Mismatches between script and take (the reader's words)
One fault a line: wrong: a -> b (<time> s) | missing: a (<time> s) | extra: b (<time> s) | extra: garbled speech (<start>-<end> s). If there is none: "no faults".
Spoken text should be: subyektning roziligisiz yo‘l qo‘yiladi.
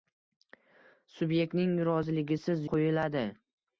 missing: yo‘l (2.7 s)